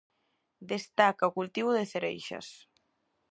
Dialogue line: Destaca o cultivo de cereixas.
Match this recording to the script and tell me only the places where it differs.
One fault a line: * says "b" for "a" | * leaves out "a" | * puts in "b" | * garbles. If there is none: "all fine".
all fine